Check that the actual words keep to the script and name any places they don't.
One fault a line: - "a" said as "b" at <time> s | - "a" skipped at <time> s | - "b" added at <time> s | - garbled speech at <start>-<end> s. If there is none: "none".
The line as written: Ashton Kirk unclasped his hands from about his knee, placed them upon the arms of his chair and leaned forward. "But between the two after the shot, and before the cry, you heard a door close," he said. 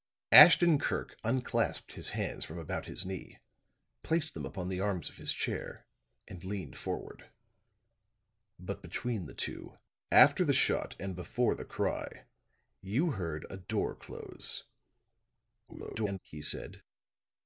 - garbled speech at 15.7-16.2 s